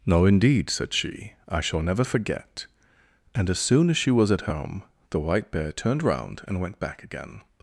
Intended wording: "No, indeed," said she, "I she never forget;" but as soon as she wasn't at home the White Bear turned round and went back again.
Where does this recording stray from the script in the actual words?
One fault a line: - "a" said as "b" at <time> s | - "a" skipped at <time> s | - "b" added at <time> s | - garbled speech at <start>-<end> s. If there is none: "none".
- "she" said as "shall" at 1.6 s
- "but" said as "and" at 3.4 s
- "wasn't" said as "was" at 4.1 s